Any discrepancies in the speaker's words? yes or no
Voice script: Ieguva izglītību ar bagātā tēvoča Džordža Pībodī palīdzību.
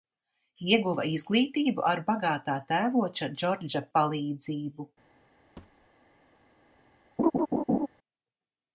yes